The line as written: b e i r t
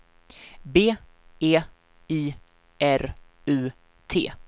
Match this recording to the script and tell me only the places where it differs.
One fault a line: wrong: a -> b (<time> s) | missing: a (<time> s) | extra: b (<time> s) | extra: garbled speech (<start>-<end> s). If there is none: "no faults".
extra: u (3.5 s)